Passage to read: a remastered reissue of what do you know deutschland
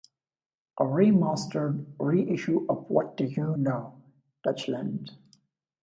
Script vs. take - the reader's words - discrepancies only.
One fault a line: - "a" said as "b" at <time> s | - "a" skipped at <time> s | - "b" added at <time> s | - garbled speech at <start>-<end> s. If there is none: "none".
none